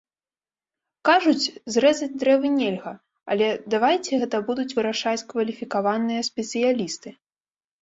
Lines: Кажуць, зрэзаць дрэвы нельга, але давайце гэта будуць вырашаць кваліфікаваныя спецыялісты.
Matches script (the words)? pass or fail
pass